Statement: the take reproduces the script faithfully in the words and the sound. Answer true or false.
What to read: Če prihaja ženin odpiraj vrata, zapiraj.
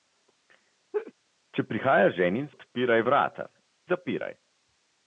false